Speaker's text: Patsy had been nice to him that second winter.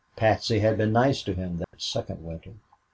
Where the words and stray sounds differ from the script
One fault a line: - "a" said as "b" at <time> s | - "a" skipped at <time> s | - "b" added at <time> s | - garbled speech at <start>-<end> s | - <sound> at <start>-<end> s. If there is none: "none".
- dropout at 1.6-1.7 s